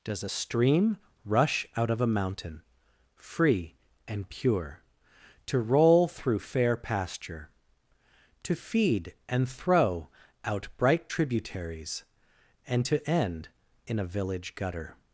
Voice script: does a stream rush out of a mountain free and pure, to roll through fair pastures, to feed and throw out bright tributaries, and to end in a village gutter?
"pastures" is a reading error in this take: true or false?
true